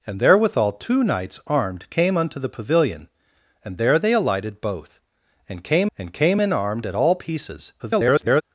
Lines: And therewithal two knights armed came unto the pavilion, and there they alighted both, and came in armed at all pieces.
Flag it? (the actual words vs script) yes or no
yes